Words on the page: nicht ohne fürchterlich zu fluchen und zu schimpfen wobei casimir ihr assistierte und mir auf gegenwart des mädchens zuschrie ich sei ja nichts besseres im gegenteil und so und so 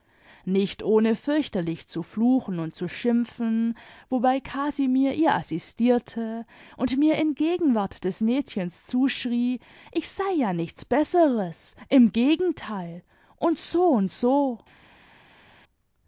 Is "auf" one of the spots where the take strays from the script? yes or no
yes